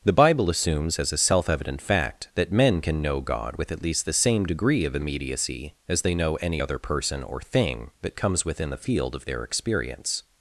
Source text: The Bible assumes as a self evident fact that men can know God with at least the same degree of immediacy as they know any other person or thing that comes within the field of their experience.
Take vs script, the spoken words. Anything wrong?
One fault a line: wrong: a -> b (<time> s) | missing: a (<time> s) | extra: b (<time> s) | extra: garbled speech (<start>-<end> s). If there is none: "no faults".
no faults